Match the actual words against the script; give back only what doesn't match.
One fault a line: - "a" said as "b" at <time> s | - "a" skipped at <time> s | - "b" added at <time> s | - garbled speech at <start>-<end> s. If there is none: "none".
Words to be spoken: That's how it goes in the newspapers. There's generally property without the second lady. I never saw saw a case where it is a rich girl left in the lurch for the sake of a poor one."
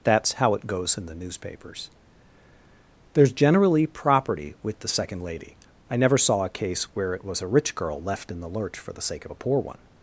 - "without" said as "with" at 4.6 s
- "saw" skipped at 6.4 s
- "is" said as "was" at 7.2 s